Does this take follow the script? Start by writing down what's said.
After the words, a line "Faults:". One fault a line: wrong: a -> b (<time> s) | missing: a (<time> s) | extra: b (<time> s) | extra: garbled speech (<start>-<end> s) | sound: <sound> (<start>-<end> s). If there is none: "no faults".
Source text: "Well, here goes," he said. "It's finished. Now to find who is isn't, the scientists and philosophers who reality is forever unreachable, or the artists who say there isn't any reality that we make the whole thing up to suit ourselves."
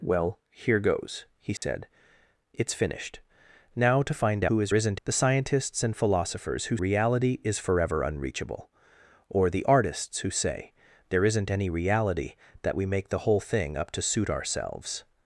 "Well, here goes," he said. "It's finished. Now to find who is isn't, the scientists and philosophers who reality is forever unreachable, or the artists who say there isn't any reality that we make the whole thing up to suit ourselves."
Faults:
sound: dropout (1.6-1.6 s)